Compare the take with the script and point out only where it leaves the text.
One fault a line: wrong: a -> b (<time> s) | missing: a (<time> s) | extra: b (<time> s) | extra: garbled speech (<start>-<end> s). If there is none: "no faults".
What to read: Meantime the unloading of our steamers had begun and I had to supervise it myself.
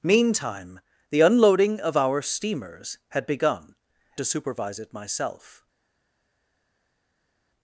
missing: and I had (3.8 s)